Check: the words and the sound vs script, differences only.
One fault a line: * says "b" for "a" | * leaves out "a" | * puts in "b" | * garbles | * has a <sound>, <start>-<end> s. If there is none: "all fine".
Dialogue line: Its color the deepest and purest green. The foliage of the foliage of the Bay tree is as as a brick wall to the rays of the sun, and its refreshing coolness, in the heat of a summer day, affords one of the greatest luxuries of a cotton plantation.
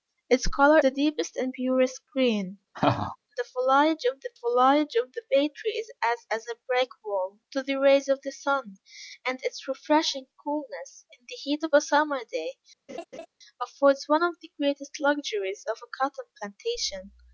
* has a laugh, 2.7-3.2 s
* has a laugh, 12.9-13.3 s